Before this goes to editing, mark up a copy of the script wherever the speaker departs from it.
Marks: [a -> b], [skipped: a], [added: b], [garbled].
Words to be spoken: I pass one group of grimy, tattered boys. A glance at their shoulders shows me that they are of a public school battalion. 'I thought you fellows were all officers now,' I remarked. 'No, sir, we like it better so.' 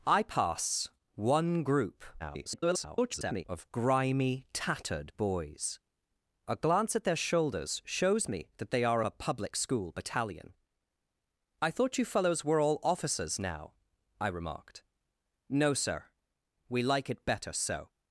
I pass one group [garbled] of grimy, tattered boys. A glance at their shoulders shows me that they are [skipped: of] a public school battalion. 'I thought you fellows were all officers now,' I remarked. 'No, sir, we like it better so.'